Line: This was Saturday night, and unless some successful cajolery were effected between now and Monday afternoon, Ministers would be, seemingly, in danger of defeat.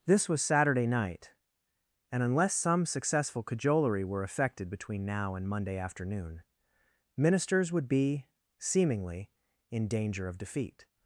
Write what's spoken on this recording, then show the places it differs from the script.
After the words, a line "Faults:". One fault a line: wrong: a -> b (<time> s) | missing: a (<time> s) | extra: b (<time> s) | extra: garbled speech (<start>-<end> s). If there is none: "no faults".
This was Saturday night, and unless some successful cajolery were effected between now and Monday afternoon, Ministers would be, seemingly, in danger of defeat.
Faults:
no faults